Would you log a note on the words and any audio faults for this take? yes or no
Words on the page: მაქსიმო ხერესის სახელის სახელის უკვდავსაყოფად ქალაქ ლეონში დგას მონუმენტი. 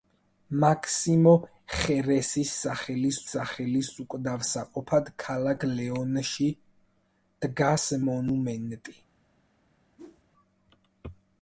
yes